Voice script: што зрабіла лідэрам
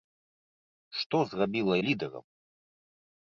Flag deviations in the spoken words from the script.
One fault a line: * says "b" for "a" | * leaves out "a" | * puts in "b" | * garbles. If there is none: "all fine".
all fine